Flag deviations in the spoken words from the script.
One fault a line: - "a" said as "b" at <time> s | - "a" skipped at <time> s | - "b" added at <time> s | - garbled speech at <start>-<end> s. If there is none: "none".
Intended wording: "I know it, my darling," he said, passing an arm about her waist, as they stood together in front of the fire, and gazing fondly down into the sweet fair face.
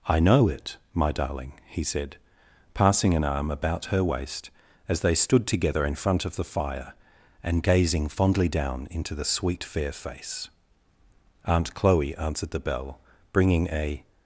- "Aunt Chloe answered the bell bringing a" added at 11.4 s